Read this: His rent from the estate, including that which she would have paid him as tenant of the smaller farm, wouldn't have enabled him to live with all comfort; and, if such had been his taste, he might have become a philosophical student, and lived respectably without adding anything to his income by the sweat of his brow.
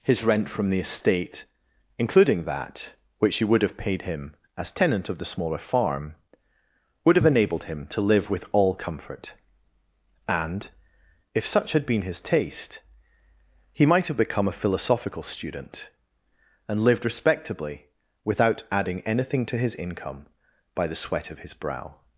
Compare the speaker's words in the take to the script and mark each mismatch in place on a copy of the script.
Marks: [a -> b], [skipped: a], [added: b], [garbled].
His rent from the estate, including that which she would have paid him as tenant of the smaller farm, [wouldn't -> would] have enabled him to live with all comfort; and, if such had been his taste, he might have become a philosophical student, and lived respectably without adding anything to his income by the sweat of his brow.